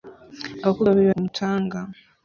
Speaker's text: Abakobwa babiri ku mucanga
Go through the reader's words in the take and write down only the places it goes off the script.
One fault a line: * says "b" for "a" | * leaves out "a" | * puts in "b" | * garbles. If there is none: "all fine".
all fine